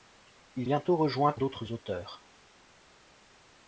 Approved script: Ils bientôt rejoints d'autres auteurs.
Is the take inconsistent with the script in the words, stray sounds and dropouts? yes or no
no